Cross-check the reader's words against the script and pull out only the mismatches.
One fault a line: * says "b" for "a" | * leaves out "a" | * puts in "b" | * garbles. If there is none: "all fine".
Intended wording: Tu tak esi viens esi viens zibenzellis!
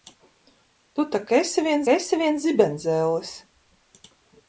all fine